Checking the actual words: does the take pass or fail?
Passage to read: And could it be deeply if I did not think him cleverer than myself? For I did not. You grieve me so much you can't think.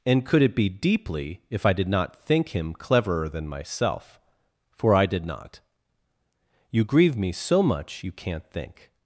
pass